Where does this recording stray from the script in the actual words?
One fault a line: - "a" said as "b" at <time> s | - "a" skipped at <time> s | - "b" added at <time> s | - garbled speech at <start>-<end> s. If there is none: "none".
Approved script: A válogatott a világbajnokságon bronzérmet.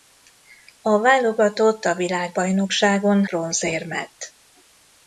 none